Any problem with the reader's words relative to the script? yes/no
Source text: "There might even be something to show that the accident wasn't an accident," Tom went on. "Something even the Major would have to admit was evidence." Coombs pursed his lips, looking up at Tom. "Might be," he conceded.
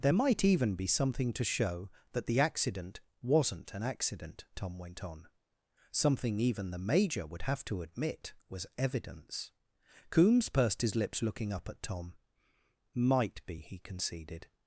no